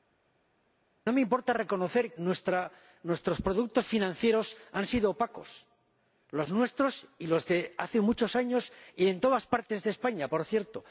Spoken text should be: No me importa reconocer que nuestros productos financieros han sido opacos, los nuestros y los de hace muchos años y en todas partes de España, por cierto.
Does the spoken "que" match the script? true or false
false